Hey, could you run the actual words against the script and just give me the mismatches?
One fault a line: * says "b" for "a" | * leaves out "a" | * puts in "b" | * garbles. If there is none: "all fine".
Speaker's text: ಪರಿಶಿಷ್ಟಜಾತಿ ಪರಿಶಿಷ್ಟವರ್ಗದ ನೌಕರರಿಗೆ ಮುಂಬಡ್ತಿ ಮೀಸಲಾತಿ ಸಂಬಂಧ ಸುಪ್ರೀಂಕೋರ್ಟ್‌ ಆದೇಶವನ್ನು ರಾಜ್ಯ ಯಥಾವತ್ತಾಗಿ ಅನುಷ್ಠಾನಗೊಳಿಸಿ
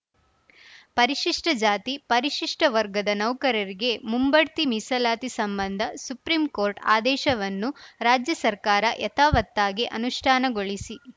* puts in "ಸರ್ಕಾರ"